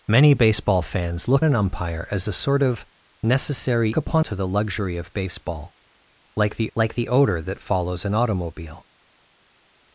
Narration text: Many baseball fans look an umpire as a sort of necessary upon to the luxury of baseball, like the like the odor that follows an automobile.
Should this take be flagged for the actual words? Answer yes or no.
no